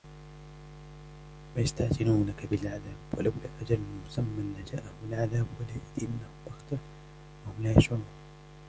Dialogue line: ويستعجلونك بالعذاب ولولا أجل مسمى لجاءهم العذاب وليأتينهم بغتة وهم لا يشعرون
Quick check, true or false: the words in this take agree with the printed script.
true